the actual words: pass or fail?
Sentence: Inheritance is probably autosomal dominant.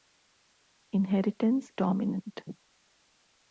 fail